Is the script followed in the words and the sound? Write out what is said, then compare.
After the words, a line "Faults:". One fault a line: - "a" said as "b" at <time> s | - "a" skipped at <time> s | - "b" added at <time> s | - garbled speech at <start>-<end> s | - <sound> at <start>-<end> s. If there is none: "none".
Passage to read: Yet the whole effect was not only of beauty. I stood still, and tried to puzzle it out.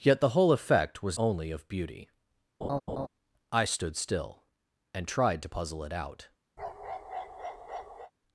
Yet the whole effect was only of beauty. I stood still, and tried to puzzle it out.
Faults:
- "not" skipped at 1.2 s
- laugh at 2.6-3.1 s
- bark at 6.6-8.1 s